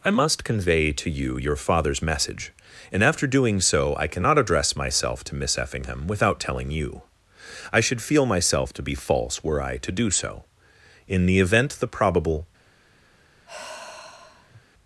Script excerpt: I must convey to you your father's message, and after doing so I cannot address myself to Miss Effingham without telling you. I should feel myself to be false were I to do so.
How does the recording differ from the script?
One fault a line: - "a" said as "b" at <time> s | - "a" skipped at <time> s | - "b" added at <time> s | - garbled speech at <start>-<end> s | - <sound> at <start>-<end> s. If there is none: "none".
- "In the event the probable" added at 11.1 s
- sigh at 13.4-14.6 s